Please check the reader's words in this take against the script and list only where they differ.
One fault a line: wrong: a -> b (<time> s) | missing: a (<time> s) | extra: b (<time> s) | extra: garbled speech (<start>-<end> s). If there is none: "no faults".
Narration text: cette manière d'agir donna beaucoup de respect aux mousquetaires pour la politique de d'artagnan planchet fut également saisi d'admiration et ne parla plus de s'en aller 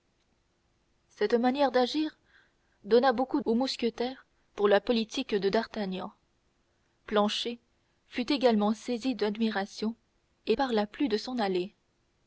missing: de respect (3.4 s)
missing: ne (10.5 s)